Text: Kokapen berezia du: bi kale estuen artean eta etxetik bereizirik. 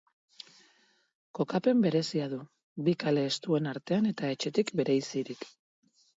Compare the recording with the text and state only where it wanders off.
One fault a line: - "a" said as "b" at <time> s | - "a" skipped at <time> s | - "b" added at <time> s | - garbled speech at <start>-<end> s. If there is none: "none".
none